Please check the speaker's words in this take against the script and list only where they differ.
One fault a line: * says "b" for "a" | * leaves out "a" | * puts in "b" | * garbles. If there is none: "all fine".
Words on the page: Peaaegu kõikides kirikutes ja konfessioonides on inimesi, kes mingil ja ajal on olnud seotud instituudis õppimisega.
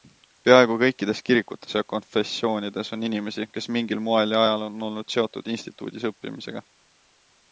* puts in "moel"